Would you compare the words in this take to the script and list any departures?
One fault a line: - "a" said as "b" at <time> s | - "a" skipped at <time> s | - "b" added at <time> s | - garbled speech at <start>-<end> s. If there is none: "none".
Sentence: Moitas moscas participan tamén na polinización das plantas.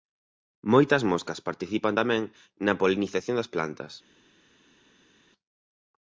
none